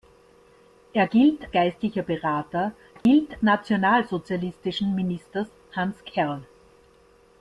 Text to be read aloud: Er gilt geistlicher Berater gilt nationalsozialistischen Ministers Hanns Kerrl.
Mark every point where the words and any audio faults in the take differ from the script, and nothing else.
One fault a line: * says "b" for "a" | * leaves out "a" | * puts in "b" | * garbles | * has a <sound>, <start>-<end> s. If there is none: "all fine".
* has a dropout, 3.0-3.1 s